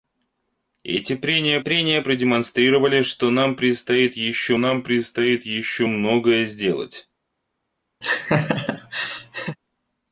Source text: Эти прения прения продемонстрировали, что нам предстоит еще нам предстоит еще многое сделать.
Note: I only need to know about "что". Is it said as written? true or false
true